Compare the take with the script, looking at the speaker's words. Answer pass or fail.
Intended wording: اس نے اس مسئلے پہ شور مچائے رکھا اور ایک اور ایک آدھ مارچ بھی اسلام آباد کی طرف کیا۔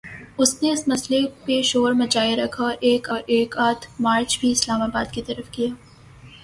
pass